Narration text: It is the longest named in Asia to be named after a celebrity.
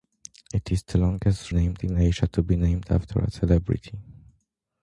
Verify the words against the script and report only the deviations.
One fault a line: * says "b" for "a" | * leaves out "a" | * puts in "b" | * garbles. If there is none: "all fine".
all fine